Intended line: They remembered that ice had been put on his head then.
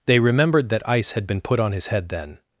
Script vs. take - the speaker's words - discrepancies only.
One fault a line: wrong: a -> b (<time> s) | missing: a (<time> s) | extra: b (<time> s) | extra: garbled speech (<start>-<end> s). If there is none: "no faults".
no faults